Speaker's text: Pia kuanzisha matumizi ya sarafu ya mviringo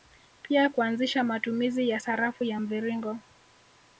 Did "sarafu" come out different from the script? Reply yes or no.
no